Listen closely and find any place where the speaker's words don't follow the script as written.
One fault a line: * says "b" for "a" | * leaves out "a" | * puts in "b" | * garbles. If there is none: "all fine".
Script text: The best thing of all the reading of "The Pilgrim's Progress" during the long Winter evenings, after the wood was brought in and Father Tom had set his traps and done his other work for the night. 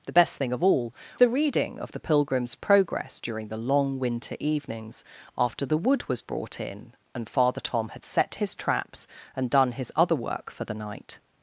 all fine